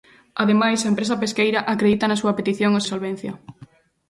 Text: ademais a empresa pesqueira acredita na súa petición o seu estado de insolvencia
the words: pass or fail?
fail